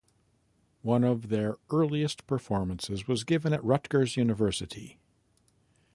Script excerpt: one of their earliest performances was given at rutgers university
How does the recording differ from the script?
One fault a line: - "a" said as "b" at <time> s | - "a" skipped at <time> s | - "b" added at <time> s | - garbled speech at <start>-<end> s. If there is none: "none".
none